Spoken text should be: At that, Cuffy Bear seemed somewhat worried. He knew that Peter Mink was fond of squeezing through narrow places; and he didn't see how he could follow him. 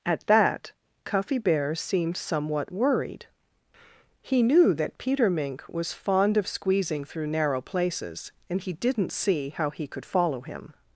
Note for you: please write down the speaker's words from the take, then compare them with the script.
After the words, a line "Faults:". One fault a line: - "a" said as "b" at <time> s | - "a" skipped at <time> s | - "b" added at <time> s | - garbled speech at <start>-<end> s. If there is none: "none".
At that, Cuffy Bear seemed somewhat worried. He knew that Peter Mink was fond of squeezing through narrow places; and he didn't see how he could follow him.
Faults:
none